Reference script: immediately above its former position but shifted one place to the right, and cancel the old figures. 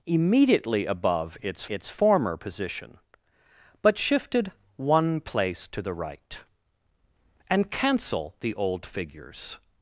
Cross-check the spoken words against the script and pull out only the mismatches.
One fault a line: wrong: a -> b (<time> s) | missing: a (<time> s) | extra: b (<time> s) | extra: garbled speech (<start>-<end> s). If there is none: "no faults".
extra: its (1.7 s)